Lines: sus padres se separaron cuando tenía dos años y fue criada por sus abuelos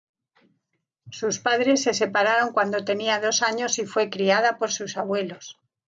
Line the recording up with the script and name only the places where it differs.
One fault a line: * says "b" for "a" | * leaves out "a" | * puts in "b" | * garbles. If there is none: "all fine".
all fine